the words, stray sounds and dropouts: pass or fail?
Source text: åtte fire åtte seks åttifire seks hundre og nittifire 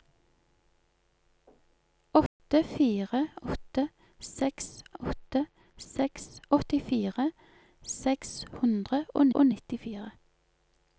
fail